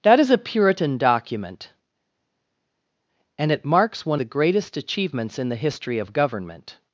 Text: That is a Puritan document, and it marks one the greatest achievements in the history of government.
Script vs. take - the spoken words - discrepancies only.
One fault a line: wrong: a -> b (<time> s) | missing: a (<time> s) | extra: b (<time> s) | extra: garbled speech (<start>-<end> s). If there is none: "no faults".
no faults